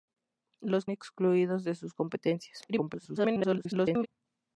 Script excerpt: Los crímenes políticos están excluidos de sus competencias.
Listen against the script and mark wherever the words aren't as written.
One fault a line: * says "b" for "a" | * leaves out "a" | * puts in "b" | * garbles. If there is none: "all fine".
* leaves out "crímenes políticos están"
* garbles